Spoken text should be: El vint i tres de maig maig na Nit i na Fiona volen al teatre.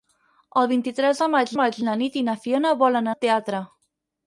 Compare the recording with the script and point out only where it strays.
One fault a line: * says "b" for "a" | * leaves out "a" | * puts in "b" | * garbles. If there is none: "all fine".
all fine